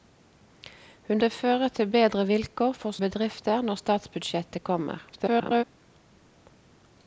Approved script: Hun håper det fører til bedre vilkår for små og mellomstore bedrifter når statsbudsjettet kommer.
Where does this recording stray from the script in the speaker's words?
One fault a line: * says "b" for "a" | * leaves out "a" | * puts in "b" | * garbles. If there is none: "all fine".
* leaves out "håper"
* leaves out "små og mellomstore"
* garbles